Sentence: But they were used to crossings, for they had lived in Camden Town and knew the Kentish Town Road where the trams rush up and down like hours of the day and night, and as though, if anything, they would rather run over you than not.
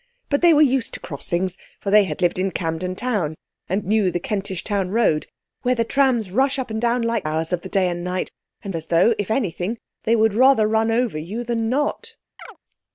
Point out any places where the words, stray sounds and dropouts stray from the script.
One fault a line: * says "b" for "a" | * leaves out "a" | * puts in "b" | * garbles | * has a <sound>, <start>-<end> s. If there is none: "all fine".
* has a chirp, 12.4-12.6 s